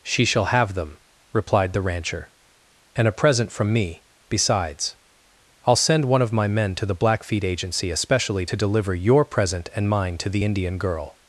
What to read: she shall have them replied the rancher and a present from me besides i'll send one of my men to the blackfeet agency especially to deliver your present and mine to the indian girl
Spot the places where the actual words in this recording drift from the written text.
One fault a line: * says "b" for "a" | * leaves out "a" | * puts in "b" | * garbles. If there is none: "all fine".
all fine